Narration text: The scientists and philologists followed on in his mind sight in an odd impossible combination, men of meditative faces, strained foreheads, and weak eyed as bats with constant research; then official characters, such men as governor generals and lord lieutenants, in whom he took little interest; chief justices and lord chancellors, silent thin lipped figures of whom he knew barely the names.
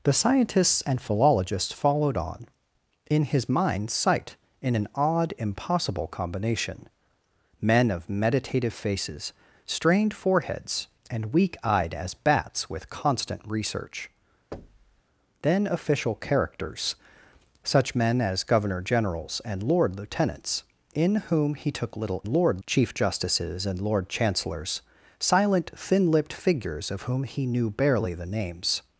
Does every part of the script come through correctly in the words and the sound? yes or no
no